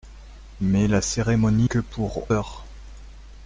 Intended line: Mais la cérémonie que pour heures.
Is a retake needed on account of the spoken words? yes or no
no